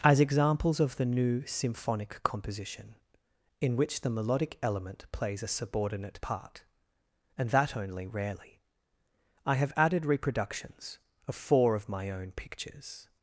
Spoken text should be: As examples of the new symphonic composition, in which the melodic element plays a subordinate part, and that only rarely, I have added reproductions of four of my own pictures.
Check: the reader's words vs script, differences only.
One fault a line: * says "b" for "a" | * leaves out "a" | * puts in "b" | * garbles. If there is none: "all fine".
all fine